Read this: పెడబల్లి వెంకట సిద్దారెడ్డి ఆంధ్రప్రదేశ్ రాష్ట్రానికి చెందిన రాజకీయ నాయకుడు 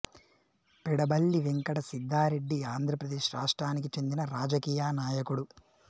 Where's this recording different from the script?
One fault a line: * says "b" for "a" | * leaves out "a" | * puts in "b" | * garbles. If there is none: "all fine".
all fine